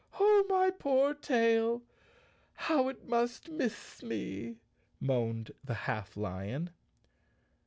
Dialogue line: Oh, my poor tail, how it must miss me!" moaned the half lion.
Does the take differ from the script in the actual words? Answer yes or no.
no